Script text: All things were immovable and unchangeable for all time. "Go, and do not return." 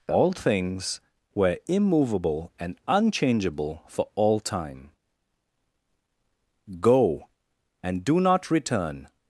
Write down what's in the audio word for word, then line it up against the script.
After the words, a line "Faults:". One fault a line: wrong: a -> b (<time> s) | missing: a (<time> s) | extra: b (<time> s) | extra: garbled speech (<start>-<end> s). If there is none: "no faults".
All things were immovable and unchangeable for all time. "Go, and do not return."
Faults:
no faults